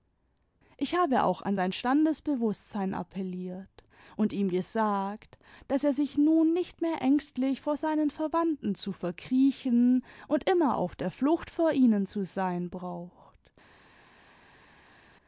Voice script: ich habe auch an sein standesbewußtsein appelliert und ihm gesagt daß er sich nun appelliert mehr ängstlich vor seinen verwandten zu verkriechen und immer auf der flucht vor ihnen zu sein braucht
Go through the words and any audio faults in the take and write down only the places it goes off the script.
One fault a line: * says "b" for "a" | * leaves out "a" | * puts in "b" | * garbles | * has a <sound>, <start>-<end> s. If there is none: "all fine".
* says "nicht" for "appelliert"